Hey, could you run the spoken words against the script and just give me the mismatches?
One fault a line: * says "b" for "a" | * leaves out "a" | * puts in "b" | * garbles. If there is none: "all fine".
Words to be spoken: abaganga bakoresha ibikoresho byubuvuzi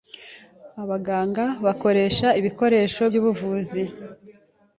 all fine